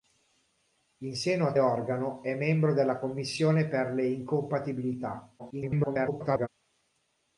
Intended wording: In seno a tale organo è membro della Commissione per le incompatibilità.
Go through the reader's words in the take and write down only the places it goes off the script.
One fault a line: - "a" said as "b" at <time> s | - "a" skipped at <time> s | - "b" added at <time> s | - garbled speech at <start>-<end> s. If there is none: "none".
- "tale" skipped at 1.5 s
- garbled speech at 5.4-6.5 s